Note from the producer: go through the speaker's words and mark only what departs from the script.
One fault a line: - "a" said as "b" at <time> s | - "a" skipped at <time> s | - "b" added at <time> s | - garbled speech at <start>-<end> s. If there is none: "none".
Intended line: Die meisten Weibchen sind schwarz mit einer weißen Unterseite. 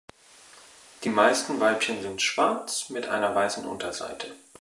none